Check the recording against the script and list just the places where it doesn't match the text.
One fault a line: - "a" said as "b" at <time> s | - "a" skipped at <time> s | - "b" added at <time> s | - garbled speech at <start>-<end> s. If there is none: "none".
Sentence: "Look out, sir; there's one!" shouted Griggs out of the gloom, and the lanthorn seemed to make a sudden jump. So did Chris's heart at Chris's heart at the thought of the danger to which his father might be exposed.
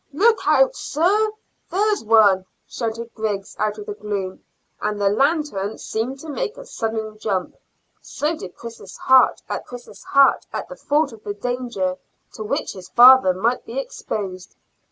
none